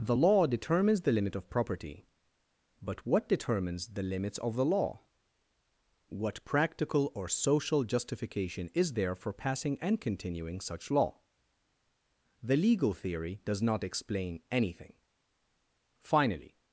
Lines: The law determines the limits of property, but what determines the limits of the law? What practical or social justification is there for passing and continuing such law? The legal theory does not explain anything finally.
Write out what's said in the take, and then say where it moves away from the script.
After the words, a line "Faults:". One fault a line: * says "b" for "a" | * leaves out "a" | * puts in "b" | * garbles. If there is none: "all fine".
The law determines the limit of property, but what determines the limits of the law? What practical or social justification is there for passing and continuing such law? The legal theory does not explain anything finally.
Faults:
* says "limit" for "limits"